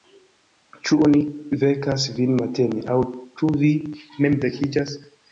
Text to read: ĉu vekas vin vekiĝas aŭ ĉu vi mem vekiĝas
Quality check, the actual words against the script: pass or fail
fail